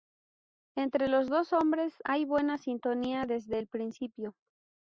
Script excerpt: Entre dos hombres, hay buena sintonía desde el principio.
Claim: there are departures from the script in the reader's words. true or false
true